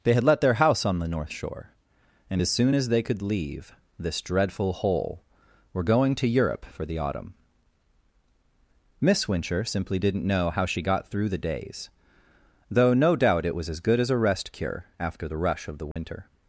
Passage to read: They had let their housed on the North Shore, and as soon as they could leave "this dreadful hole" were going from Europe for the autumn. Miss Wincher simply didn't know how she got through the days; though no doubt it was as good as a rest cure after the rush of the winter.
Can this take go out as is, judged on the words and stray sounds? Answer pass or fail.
fail